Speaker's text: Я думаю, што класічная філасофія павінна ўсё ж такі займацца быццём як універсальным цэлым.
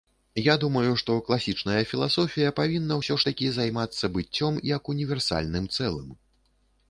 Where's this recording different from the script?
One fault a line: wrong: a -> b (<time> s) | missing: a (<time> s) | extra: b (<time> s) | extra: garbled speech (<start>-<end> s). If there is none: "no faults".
no faults